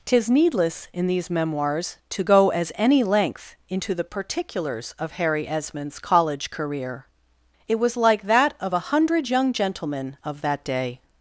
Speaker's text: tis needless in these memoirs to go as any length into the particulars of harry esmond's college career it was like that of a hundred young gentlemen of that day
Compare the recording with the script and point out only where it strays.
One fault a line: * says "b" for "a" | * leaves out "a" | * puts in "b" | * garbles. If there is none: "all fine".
all fine